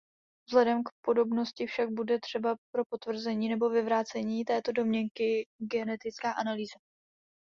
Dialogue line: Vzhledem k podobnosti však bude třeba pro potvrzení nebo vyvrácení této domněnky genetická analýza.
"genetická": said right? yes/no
yes